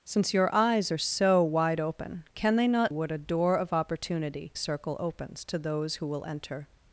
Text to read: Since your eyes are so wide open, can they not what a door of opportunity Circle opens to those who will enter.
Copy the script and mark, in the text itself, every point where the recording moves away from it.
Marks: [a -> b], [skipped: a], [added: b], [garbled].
Since your eyes are so wide open, can they not what a door of opportunity Circle opens to those who will enter.